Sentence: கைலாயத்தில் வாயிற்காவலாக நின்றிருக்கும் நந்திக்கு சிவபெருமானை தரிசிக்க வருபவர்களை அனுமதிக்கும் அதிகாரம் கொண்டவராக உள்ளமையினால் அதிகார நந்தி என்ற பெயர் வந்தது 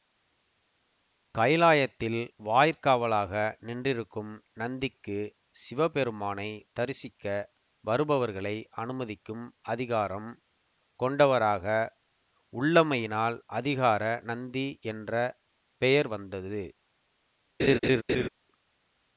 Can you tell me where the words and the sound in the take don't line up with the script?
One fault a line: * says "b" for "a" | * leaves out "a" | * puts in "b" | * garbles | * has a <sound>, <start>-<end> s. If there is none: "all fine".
* has a laugh, 17.6-18.3 s